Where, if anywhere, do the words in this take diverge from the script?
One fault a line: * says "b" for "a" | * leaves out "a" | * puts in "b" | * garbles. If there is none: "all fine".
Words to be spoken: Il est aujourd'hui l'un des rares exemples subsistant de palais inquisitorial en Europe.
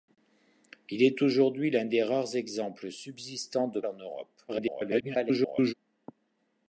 * leaves out "palais inquisitorial"
* garbles